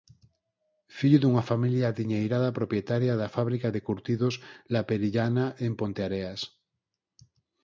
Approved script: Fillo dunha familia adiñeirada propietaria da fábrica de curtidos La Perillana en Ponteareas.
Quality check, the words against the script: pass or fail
pass